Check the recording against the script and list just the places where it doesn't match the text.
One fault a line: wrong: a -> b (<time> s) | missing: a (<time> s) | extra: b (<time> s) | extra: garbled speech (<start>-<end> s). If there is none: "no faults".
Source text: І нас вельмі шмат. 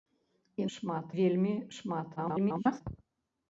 wrong: нас -> шмат (0.8 s)
extra: garbled speech (2.2-2.8 s)